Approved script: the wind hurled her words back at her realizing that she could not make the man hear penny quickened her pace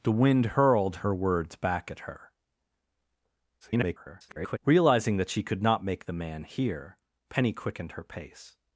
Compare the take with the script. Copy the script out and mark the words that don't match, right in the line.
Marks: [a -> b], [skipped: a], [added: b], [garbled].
the wind hurled her words back at her [garbled] realizing that she could not make the man hear penny quickened her pace